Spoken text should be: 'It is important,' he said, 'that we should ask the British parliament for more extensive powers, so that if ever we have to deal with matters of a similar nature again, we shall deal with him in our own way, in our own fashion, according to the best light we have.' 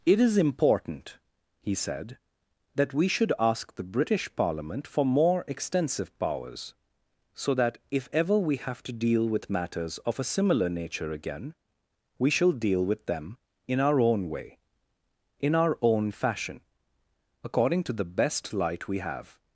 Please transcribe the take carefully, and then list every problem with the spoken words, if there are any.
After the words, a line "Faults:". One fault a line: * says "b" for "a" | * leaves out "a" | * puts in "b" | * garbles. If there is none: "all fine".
'It is important,' he said, 'that we should ask the British parliament for more extensive powers, so that if ever we have to deal with matters of a similar nature again, we shall deal with them in our own way, in our own fashion, according to the best light we have.'
Faults:
* says "them" for "him"